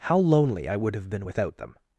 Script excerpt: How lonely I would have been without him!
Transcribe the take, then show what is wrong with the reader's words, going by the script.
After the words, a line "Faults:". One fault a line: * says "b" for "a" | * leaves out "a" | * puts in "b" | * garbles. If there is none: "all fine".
How lonely I would have been without them!
Faults:
* says "them" for "him"